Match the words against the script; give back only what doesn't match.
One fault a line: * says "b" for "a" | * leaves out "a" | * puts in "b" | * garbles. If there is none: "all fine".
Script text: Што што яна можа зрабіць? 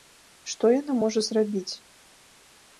* leaves out "што"